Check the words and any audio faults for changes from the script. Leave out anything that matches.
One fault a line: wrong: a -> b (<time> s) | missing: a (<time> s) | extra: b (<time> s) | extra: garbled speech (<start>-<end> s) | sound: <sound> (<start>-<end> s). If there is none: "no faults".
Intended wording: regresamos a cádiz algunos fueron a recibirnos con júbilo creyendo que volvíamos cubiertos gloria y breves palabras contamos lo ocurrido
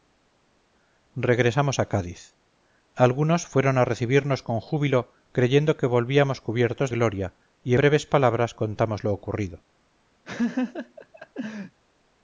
sound: laugh (10.2-11.8 s)